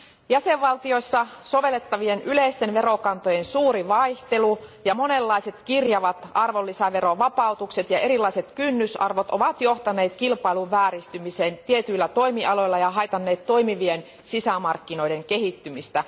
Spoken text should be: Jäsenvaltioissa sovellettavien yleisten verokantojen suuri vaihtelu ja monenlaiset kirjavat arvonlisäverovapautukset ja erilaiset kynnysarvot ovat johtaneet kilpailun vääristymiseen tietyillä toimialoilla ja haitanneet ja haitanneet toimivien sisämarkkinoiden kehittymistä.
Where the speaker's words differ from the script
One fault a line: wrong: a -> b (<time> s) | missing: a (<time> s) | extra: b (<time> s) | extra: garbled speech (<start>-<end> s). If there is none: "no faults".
missing: ja haitanneet (13.5 s)